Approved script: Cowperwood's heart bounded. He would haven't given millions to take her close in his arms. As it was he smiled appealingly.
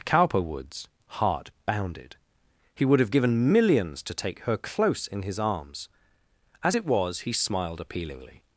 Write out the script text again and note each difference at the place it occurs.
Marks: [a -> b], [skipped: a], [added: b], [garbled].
Cowperwood's heart bounded. He would [haven't -> have] given millions to take her close in his arms. As it was he smiled appealingly.